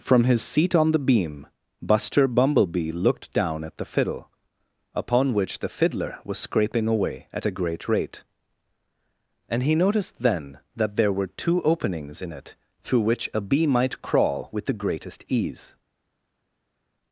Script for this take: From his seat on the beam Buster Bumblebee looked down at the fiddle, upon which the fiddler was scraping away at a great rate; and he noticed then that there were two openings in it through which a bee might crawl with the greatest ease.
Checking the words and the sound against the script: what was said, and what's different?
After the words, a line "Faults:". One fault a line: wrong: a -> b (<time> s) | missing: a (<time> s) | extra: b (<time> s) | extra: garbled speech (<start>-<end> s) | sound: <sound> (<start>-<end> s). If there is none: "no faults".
From his seat on the beam Buster Bumblebee looked down at the fiddle, upon which the fiddler was scraping away at a great rate; and he noticed then that there were two openings in it through which a bee might crawl with the greatest ease.
Faults:
no faults